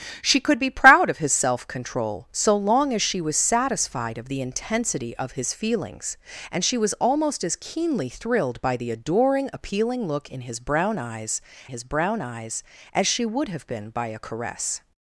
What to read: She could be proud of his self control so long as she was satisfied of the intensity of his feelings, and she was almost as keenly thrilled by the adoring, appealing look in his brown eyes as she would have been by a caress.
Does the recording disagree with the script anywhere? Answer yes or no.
yes